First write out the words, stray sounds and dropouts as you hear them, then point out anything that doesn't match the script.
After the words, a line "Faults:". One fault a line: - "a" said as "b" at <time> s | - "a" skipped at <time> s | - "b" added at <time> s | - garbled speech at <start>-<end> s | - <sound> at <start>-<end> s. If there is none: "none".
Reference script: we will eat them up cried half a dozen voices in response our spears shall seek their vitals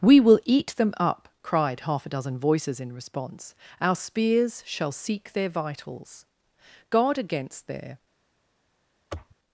we will eat them up cried half a dozen voices in response our spears shall seek their vitals guard against their
Faults:
- "guard against their" added at 6.9 s
- sniff at 9.1-9.3 s